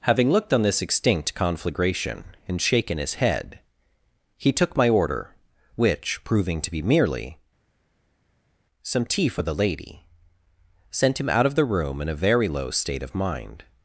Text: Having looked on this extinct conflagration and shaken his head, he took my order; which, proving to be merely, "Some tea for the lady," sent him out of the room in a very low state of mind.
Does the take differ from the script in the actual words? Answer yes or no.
no